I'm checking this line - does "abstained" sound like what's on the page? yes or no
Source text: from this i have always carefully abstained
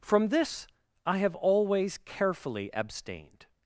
yes